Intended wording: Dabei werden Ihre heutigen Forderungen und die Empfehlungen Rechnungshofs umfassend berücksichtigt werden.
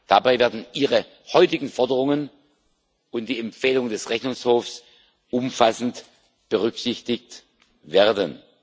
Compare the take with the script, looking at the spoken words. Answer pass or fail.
fail